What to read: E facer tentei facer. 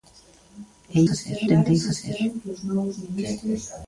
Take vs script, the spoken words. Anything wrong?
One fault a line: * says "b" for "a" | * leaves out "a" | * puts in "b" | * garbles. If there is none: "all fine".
all fine